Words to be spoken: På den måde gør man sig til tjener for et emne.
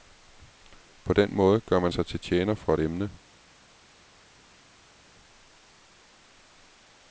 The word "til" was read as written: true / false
true